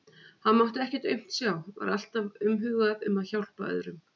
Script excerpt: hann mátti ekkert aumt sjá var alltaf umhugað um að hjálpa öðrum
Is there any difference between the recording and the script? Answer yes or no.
no